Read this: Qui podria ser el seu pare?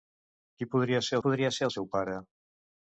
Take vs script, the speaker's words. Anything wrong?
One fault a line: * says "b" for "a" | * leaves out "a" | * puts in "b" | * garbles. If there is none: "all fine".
* puts in "podria ser"